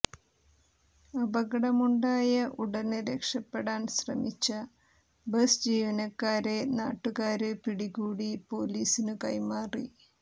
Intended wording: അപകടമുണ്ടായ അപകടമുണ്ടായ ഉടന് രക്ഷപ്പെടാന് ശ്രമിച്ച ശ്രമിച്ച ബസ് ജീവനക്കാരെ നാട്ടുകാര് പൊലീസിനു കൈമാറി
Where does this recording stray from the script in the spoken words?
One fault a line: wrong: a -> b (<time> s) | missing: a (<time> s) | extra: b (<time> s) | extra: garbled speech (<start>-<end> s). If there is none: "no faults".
missing: അപകടമുണ്ടായ (2.3 s)
missing: ശ്രമിച്ച (4.5 s)
extra: പിടികൂടി (7.6 s)